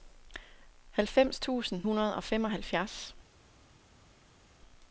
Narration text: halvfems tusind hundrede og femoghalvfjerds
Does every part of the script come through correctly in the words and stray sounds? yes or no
yes